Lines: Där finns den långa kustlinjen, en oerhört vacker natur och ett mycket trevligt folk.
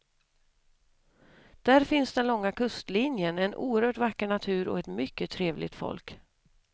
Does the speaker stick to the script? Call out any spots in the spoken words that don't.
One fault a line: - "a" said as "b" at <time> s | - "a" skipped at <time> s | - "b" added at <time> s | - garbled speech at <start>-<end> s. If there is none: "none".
none